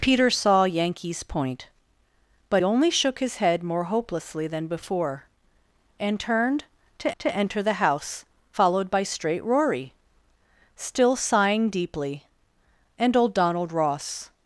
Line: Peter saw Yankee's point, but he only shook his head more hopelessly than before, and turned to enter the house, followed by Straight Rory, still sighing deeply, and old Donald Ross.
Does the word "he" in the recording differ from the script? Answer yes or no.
yes